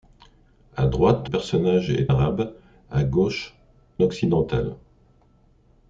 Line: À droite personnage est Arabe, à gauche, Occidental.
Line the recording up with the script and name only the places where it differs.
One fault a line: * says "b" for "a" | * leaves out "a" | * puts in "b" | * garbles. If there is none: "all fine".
all fine